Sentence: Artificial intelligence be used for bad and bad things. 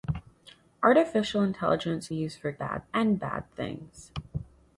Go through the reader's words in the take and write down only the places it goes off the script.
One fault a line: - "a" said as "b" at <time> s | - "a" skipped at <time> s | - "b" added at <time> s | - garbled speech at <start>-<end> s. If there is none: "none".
none